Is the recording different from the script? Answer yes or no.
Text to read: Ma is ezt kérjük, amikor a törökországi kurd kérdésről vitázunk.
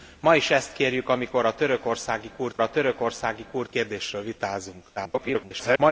yes